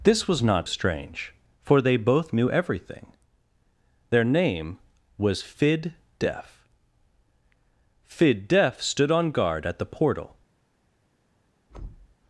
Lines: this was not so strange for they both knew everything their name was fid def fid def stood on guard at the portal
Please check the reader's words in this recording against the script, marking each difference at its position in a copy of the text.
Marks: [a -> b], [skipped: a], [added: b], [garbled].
this was not [skipped: so] strange for they both knew everything their name was fid def fid def stood on guard at the portal